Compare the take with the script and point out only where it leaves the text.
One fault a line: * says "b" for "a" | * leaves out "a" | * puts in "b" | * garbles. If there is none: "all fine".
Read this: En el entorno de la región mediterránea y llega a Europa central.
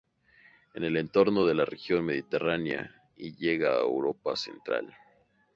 all fine